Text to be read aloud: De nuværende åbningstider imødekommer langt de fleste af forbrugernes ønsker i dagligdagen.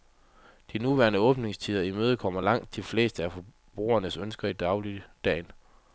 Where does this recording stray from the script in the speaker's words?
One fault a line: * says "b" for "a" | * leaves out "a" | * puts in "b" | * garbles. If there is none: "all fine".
all fine